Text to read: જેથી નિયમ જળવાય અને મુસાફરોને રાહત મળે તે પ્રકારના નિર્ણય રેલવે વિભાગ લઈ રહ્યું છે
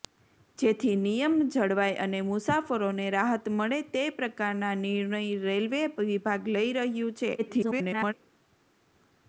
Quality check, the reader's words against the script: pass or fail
fail